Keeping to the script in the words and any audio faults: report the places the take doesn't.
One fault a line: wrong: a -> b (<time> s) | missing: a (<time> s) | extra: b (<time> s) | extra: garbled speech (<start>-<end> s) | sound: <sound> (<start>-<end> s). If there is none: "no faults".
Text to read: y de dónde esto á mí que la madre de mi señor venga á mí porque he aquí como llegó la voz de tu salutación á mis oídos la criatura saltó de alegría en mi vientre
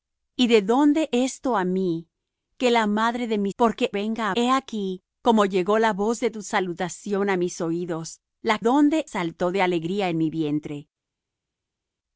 wrong: señor -> porque (3.6 s)
missing: mí porque (4.4 s)
wrong: criatura -> dónde (8.6 s)